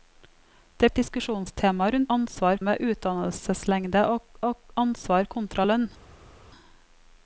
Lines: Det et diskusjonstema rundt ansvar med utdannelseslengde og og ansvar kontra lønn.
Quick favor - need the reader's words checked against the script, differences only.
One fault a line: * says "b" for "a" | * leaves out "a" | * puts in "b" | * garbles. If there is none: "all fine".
all fine